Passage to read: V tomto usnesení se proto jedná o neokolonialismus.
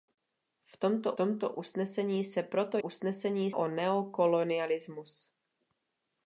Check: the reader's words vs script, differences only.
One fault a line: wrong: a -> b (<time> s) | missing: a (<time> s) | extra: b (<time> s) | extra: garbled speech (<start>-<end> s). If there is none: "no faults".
extra: tomto (1.1 s)
wrong: jedná -> usnesení (2.8 s)